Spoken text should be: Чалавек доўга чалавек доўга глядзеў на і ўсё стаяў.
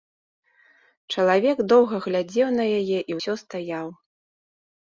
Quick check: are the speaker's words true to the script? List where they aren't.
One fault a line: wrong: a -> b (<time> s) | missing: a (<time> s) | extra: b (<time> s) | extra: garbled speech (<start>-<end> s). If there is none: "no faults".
missing: чалавек доўга (1.9 s)
extra: яе (2.8 s)